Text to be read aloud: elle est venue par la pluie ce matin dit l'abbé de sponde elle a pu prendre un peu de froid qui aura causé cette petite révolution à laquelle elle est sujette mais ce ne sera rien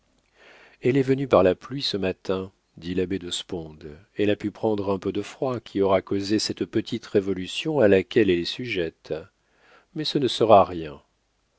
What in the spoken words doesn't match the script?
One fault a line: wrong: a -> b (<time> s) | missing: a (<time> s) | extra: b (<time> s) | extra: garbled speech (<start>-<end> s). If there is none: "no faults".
no faults